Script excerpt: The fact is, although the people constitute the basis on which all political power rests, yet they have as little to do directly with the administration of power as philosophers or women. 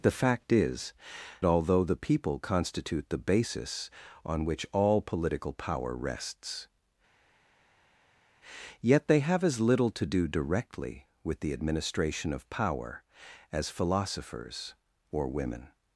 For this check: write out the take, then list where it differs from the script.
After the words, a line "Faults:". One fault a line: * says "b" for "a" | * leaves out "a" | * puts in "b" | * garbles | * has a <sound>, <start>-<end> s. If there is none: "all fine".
The fact is, although the people constitute the basis on which all political power rests, yet they have as little to do directly with the administration of power as philosophers or women.
Faults:
all fine